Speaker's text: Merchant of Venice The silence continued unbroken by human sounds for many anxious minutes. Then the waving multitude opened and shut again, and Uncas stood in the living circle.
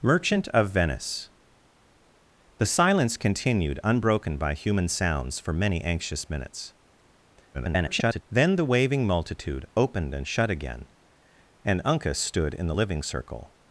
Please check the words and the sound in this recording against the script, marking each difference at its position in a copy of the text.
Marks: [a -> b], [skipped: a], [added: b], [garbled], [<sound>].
Merchant of Venice The silence continued unbroken by human sounds for many anxious minutes. [garbled] Then the waving multitude opened and shut again, and Uncas stood in the living circle.